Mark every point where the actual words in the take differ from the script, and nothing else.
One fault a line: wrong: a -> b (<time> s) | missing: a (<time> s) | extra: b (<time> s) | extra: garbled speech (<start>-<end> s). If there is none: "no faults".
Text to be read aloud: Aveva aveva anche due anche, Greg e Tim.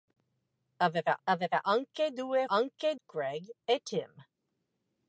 no faults